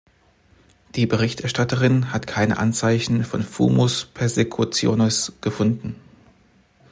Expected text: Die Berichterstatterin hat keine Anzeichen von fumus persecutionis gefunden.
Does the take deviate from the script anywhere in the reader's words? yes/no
no